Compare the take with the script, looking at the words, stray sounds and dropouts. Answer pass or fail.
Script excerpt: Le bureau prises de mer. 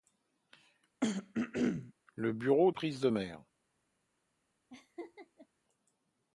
fail